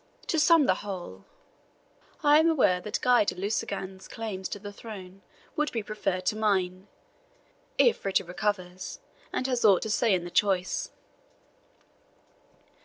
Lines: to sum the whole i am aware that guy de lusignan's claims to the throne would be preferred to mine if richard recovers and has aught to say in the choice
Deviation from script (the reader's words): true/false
false